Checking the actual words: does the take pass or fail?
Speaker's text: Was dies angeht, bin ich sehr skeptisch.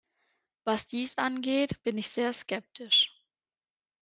pass